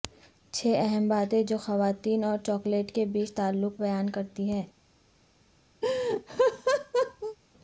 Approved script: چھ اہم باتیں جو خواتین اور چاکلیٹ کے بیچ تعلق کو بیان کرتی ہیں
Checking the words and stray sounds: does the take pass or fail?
fail